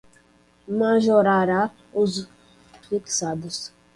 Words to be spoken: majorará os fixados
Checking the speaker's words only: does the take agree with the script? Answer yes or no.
yes